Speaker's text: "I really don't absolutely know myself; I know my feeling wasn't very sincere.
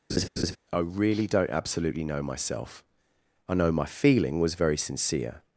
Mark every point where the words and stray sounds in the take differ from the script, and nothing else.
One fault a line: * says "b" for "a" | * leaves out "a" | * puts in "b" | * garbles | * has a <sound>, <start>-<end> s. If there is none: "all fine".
* has a laugh, 0.1-0.6 s
* says "was" for "wasn't"